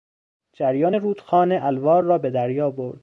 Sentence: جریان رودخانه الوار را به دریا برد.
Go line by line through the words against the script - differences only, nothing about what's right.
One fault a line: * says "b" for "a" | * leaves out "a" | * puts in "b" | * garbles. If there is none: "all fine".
all fine